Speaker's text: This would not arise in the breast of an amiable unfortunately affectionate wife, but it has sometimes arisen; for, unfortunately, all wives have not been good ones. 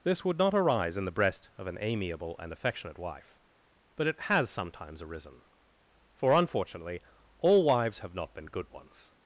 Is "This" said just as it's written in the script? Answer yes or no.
yes